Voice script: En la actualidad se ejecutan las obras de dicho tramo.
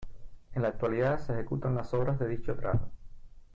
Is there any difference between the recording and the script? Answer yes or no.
no